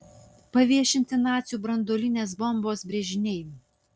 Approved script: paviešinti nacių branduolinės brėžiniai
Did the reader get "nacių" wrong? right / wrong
right